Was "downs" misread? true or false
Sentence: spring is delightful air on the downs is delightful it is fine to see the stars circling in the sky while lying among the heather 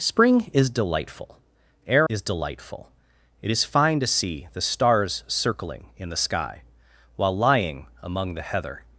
true